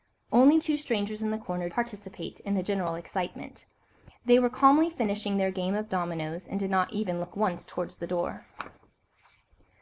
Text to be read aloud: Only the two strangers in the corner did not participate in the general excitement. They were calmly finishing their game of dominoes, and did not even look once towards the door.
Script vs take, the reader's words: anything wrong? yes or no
yes